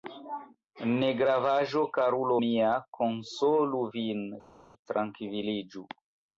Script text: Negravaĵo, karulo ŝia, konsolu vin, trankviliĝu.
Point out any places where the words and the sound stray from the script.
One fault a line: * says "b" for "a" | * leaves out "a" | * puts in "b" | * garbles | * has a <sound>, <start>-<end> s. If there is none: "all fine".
* says "mia" for "ŝia"